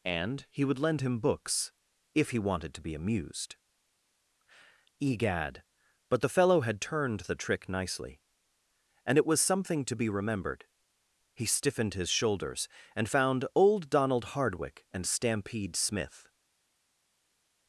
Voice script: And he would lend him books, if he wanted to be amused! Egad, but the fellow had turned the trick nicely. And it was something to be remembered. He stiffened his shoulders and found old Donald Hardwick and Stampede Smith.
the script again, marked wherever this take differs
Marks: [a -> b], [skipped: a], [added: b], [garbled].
And he would lend him books, if he wanted to be amused! Egad, but the fellow had turned the trick nicely. And it was something to be remembered. He stiffened his shoulders and found old Donald Hardwick and Stampede Smith.